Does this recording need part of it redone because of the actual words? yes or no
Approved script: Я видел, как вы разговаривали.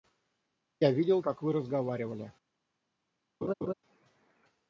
no